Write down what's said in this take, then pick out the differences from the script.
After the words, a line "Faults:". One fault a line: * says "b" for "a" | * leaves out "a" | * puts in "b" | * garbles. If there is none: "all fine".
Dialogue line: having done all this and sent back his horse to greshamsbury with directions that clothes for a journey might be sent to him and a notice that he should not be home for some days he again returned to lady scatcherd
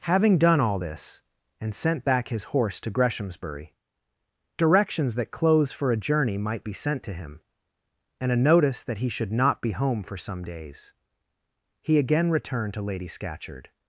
having done all this and sent back his horse to greshamsbury directions that clothes for a journey might be sent to him and a notice that he should not be home for some days he again returned to lady scatcherd
Faults:
* leaves out "with"